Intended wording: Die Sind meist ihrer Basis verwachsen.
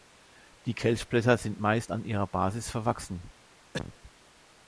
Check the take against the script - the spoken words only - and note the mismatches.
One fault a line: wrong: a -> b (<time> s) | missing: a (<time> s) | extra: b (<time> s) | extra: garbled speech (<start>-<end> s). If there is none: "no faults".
extra: Kelchblätter (0.7 s)
extra: an (1.9 s)